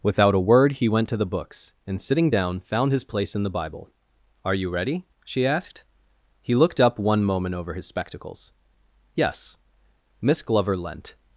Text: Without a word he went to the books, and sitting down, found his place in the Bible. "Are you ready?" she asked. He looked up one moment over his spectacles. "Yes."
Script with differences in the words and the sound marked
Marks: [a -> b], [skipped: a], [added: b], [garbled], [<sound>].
Without a word he went to the books, and sitting down, found his place in the Bible. "Are you ready?" she asked. He looked up one moment over his spectacles. "Yes." [added: Miss Glover leant]